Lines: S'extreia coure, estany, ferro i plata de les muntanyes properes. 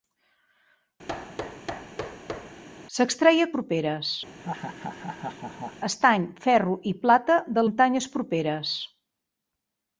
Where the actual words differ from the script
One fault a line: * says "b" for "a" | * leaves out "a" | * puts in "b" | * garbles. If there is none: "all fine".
* says "properes" for "coure"
* leaves out "les"